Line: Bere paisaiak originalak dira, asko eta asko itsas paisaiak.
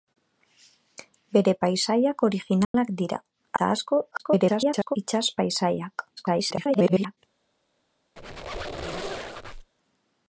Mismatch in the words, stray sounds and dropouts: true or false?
true